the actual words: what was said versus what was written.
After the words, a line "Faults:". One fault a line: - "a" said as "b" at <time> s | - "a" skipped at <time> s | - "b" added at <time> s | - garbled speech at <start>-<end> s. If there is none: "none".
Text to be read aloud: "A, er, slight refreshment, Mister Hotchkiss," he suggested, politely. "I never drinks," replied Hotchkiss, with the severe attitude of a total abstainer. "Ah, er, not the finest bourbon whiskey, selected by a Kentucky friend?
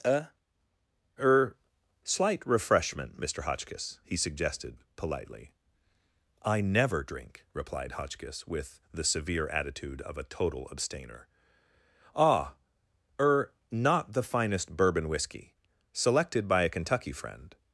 "A, er, slight refreshment, Mister Hotchkiss," he suggested, politely. "I never drink," replied Hotchkiss, with the severe attitude of a total abstainer. "Ah, er, not the finest bourbon whiskey, selected by a Kentucky friend?
Faults:
- "drinks" said as "drink" at 7.0 s